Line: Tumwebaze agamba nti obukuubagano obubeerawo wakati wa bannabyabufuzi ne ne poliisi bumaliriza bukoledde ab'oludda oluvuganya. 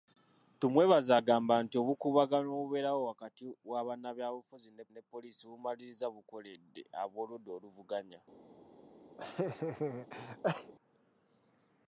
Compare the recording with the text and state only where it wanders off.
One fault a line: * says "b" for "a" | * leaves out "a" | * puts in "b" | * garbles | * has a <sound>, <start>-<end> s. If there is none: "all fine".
* has a laugh, 9.2-10.7 s